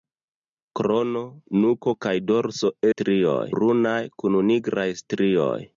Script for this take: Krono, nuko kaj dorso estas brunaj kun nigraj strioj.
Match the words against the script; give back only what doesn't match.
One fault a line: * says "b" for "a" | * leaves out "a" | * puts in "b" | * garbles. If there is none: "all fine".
* says "strioj" for "estas"